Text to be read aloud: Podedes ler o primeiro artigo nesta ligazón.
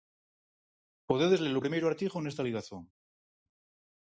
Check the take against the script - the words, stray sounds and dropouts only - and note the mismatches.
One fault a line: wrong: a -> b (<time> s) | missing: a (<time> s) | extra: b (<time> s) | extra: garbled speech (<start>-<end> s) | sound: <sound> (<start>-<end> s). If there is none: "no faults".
no faults